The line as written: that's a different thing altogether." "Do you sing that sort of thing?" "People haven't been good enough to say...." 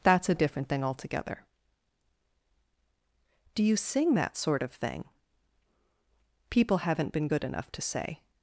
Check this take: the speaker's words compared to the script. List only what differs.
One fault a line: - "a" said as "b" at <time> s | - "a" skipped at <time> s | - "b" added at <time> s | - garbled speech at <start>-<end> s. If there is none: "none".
none